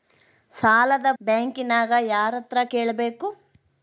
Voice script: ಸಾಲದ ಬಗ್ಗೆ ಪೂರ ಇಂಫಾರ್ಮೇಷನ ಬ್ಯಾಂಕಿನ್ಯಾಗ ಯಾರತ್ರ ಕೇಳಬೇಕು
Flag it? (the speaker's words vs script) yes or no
yes